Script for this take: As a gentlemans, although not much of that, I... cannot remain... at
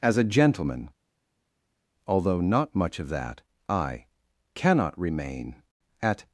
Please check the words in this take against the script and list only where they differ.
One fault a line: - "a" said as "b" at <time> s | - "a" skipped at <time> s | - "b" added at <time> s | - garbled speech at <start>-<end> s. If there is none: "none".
- "gentlemans" said as "gentleman" at 0.2 s